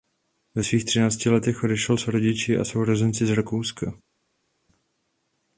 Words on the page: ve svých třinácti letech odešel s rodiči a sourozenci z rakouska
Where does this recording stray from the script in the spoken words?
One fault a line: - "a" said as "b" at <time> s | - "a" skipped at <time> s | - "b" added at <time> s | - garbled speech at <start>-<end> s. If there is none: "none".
none